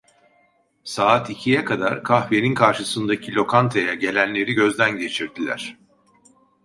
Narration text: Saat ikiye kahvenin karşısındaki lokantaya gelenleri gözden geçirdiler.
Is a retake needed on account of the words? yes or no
yes